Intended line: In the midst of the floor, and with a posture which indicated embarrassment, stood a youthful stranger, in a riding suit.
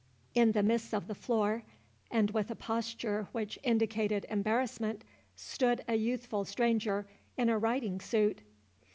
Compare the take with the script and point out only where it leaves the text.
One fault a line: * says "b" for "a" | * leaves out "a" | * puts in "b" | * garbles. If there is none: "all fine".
all fine